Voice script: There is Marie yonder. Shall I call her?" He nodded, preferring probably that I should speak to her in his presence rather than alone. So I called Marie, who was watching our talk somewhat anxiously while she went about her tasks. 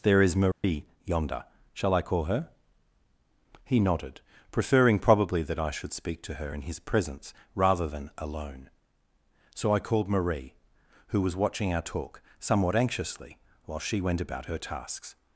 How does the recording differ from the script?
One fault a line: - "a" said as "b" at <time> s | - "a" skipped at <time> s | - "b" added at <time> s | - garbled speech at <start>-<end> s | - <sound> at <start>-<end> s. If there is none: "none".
- dropout at 0.5-0.6 s